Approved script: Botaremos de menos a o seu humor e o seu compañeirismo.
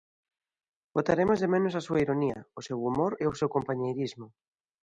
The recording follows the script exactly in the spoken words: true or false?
false